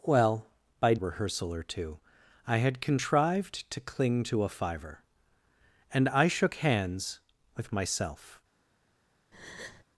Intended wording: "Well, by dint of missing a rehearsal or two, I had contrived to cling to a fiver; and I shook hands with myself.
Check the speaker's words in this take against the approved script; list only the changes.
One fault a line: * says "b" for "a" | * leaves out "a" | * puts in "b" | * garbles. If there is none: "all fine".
* leaves out "dint of missing"